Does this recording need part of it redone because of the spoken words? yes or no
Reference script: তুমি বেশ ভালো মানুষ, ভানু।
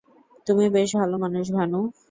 no